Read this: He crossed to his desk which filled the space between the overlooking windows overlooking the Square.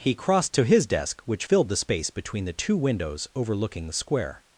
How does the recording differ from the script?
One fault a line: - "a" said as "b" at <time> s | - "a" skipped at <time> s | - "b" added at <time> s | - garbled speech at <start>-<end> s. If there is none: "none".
- "overlooking" said as "two" at 2.5 s